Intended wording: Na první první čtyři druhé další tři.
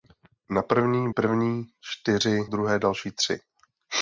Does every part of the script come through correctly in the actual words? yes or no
yes